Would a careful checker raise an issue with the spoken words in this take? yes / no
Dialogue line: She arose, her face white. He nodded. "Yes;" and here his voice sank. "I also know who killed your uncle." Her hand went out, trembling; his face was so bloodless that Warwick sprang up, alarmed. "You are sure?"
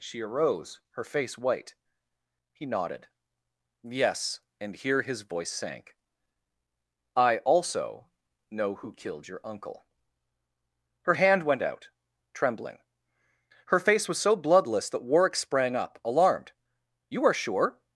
yes